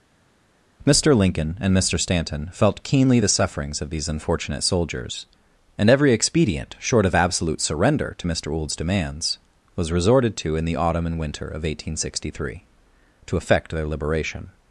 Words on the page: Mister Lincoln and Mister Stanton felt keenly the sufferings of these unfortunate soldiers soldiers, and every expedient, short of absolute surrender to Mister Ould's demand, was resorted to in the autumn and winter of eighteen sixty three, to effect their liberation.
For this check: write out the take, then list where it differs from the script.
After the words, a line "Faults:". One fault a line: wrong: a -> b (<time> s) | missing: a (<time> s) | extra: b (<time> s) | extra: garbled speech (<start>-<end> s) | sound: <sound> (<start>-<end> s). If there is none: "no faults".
Mister Lincoln and Mister Stanton felt keenly the sufferings of these unfortunate soldiers, and every expedient, short of absolute surrender to Mister Ould's demands, was resorted to in the autumn and winter of eighteen sixty three, to effect their liberation.
Faults:
missing: soldiers (5.3 s)
wrong: demand -> demands (8.7 s)